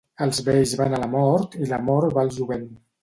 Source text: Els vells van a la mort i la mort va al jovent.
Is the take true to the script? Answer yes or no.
yes